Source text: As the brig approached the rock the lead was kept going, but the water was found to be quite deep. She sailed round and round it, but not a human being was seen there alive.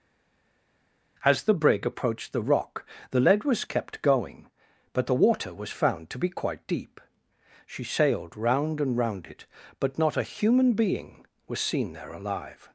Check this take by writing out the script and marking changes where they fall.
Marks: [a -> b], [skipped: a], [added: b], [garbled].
As the brig approached the rock the lead was kept going, but the water was found to be quite deep. She sailed round and round it, but not a human being was seen there alive.